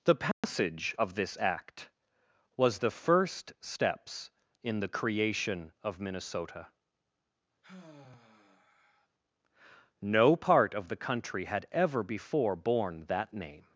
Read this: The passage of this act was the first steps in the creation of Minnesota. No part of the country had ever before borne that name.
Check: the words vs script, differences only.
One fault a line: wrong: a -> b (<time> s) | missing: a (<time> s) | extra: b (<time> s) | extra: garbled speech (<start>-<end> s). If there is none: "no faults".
no faults